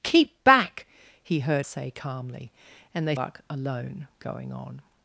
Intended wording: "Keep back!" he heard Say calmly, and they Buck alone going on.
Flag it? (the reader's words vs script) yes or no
no